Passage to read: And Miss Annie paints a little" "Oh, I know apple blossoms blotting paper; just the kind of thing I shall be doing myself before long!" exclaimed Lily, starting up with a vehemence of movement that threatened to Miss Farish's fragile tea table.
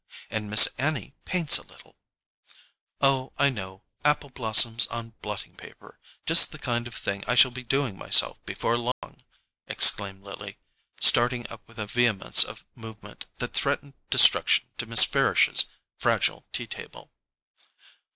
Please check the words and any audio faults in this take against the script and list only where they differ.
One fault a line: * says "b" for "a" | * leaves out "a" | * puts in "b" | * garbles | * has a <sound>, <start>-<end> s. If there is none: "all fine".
* puts in "on"
* has a dropout, 8.9-9.0 s
* puts in "destruction"